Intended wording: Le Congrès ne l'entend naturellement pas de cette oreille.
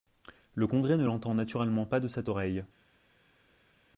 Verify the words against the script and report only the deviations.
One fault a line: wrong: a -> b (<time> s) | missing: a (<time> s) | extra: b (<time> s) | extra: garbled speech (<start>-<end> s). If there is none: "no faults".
no faults